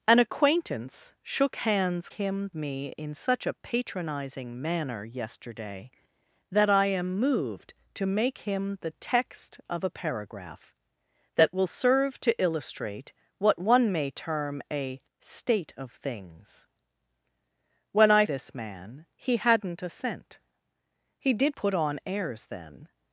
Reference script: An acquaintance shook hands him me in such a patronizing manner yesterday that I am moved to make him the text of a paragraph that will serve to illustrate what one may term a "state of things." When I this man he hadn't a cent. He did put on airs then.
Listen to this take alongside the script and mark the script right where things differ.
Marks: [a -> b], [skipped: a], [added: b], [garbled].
An acquaintance shook hands him me in such a patronizing manner yesterday that I am moved to make him the text of a paragraph that will serve to illustrate what one may term a "state of things." When I this man he hadn't a cent. He did put on airs then.